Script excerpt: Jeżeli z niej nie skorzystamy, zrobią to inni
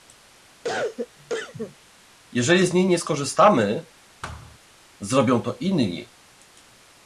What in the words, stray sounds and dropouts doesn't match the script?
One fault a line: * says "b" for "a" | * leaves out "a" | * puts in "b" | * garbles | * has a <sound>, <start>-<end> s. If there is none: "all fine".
* has a cough, 0.6-1.8 s
* has a thud, 4.2-4.6 s